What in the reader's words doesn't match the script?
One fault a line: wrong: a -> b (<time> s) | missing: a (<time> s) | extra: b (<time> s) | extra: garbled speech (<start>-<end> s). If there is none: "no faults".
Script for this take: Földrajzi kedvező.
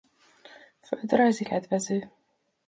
no faults